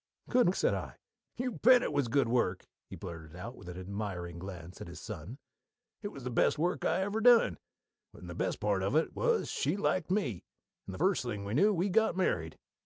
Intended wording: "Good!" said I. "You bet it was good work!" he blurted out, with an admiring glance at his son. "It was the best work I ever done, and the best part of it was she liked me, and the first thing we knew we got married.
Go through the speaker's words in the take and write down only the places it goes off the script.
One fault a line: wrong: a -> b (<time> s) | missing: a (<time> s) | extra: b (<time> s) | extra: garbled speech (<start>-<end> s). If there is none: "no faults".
no faults